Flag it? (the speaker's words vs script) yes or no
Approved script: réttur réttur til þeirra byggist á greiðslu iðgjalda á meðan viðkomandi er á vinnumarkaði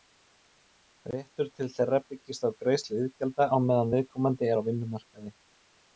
yes